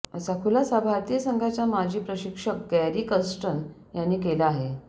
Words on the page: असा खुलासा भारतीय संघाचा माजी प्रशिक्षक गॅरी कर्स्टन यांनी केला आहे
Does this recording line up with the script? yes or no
yes